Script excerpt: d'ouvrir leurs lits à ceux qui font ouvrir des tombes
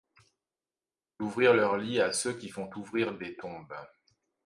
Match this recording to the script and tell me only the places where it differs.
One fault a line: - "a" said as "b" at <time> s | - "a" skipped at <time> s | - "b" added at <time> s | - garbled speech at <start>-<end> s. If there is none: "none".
none